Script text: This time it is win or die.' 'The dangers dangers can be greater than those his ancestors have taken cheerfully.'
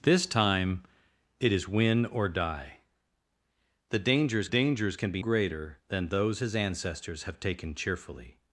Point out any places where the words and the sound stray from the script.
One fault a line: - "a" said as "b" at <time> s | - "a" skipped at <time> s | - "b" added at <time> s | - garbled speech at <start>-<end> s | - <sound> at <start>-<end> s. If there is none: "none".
none